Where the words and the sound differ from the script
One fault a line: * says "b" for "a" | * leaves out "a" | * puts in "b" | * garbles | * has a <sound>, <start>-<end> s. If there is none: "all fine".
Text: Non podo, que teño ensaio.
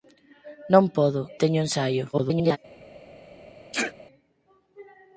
* leaves out "que"
* garbles
* has a sneeze, 3.7-3.9 s